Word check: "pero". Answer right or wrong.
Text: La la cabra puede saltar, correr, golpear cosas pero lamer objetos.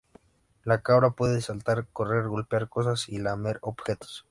wrong